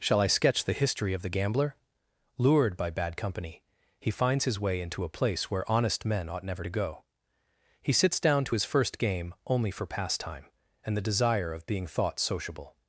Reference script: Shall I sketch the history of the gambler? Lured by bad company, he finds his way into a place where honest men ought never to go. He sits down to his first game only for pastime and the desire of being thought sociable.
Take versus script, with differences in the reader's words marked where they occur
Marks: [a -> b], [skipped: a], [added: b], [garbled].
Shall I sketch the history of the gambler? Lured by bad company, he finds his way into a place where honest men ought never to go. He sits down to his first game only for pastime and the desire of being thought sociable.